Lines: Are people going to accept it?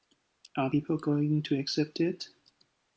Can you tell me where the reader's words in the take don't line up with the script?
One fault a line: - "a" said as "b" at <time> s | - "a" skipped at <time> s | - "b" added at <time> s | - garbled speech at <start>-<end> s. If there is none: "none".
none